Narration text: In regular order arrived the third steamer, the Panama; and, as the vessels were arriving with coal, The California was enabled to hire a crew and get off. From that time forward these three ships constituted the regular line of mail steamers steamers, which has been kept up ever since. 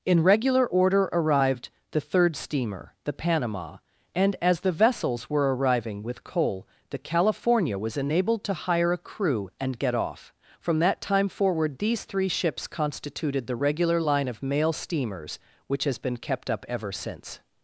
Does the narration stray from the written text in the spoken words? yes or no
yes